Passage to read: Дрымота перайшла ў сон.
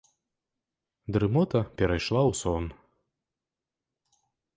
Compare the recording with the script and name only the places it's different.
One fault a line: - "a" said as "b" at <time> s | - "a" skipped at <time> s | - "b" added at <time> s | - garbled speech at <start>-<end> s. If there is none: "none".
none